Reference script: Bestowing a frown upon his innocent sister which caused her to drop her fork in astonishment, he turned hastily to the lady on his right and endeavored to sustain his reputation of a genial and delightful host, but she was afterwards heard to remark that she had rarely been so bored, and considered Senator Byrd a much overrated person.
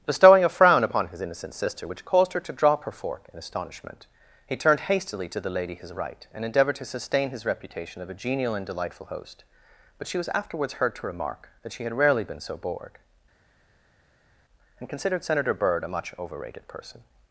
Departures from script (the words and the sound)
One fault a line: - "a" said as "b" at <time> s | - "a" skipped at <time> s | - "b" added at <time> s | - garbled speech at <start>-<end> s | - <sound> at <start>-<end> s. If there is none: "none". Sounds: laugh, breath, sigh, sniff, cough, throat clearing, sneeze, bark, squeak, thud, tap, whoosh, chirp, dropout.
- "on" skipped at 5.7 s